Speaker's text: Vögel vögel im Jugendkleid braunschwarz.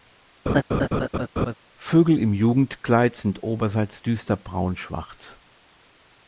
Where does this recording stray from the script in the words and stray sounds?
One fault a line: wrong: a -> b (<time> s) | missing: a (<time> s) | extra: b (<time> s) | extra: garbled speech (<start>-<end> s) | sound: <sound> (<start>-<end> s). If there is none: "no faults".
sound: laugh (0.5-1.5 s)
missing: vögel (2.2 s)
extra: sind oberseits düster (3.2 s)